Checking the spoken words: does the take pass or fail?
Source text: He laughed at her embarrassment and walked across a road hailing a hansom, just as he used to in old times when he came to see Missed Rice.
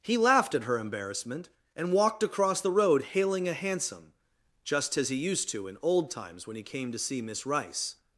fail